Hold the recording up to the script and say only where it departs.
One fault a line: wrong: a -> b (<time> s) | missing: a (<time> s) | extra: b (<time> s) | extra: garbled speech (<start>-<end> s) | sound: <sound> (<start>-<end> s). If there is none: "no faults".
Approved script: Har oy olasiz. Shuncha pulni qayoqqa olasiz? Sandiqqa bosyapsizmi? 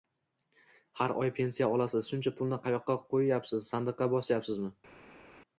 extra: pensiya (1.4 s)
wrong: olasiz -> qo'yyapsiz (3.1 s)